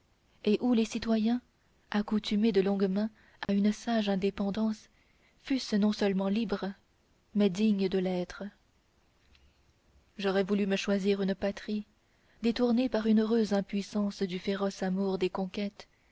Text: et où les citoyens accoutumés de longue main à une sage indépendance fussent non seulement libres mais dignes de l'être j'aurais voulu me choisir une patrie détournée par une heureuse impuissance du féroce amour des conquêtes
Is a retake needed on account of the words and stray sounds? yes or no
yes